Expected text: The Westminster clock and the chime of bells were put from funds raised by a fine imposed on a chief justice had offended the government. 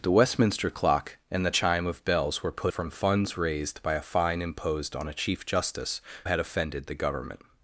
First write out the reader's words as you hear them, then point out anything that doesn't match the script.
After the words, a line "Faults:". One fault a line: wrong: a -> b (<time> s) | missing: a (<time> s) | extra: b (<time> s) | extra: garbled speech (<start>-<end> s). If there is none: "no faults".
The Westminster clock and the chime of bells were put from funds raised by a fine imposed on a chief justice had offended the government.
Faults:
no faults